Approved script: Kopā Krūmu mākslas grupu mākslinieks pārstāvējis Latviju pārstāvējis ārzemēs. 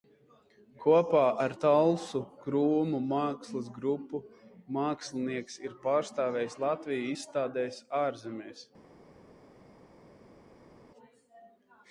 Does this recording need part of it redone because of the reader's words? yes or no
yes